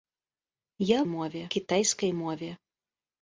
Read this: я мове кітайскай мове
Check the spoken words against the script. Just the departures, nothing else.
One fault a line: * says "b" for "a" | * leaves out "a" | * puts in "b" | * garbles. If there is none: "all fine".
all fine